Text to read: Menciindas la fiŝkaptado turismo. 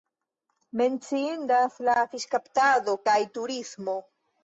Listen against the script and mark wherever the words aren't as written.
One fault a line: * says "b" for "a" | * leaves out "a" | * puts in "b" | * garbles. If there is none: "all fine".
* puts in "kaj"